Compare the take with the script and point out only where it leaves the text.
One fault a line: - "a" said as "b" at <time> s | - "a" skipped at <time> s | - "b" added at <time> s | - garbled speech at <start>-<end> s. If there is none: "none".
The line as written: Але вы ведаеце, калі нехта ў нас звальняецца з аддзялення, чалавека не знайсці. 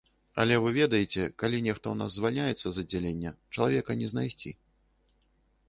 none